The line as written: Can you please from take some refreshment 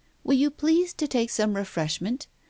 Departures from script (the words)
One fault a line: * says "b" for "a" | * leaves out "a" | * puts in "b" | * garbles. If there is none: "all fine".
* says "Will" for "Can"
* says "to" for "from"